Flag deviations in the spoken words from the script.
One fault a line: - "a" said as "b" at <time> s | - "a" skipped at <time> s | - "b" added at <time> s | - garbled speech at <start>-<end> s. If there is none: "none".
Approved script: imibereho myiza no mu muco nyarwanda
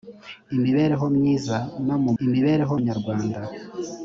- "muco" said as "imibereho" at 2.2 s